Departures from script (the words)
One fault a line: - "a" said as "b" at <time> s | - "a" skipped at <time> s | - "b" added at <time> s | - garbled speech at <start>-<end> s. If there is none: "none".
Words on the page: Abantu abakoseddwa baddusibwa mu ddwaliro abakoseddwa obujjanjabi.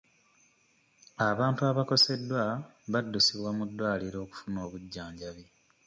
- "abakoseddwa" said as "okufuna" at 4.2 s